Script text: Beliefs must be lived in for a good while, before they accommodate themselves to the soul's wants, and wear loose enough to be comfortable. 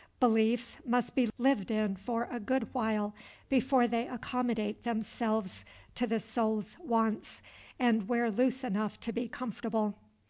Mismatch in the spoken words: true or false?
false